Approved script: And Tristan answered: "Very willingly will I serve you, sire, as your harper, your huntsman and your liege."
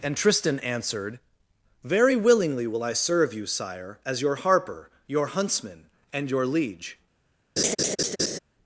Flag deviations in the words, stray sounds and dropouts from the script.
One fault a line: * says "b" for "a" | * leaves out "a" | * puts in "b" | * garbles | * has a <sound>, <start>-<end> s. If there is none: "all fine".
* has a laugh, 7.6-8.4 s